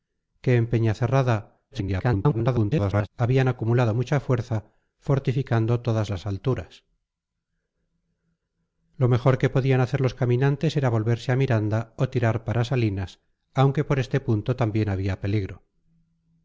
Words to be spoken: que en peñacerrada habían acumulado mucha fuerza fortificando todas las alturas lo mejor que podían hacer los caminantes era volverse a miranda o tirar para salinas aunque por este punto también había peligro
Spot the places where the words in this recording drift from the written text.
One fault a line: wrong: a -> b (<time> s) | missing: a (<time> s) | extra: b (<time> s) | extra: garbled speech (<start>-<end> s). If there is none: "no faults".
extra: garbled speech (1.7-3.1 s)